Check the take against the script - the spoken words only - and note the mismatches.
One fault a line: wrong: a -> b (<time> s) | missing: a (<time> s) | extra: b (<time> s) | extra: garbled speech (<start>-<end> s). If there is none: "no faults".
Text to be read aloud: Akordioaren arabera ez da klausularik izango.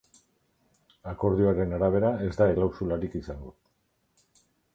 no faults